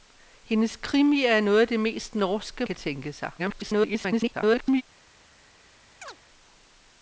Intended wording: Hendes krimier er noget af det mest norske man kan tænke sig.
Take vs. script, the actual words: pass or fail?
fail